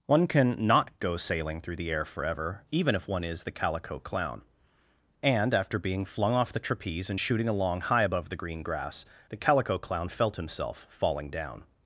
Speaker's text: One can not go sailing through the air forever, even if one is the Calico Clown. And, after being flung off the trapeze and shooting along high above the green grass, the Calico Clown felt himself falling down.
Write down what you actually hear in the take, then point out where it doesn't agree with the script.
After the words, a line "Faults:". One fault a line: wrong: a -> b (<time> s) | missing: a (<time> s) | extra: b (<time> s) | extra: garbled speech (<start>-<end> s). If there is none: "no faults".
One can not go sailing through the air forever, even if one is the Calico Clown. And, after being flung off the trapeze and shooting along high above the green grass, the Calico Clown felt himself falling down.
Faults:
no faults